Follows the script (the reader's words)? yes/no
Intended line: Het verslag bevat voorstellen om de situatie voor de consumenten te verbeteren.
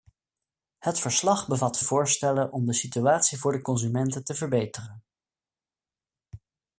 yes